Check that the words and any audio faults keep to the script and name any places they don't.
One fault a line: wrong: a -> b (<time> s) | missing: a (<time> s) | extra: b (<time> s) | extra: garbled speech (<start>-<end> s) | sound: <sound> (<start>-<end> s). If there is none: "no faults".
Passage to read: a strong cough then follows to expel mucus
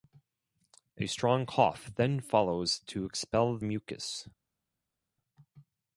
no faults